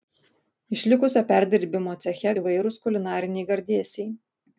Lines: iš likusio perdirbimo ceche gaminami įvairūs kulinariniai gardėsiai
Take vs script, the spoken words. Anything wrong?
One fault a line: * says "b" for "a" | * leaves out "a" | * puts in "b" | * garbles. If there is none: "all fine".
* leaves out "gaminami"